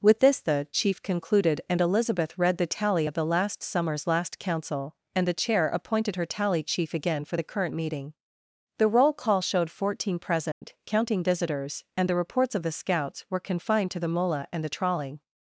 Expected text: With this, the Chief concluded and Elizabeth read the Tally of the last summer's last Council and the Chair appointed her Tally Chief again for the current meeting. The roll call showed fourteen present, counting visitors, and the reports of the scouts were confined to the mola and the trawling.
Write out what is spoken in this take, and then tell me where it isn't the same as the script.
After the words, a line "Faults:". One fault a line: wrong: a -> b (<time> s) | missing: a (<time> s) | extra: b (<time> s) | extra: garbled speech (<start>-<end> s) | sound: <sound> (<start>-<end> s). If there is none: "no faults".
With this, the Chief concluded and Elizabeth read the Tally of the last summer's last Council and the Chair appointed her Tally Chief again for the current meeting. The roll call showed fourteen present, counting visitors, and the reports of the scouts were confined to the mola and the trawling.
Faults:
sound: dropout (10.5-10.6 s)